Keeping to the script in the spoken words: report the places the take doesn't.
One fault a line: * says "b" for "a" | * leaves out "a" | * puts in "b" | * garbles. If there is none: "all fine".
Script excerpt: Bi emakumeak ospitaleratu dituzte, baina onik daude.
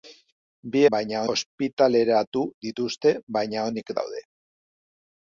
* says "baina" for "emakumeak"